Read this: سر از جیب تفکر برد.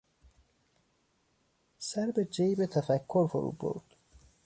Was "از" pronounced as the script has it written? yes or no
no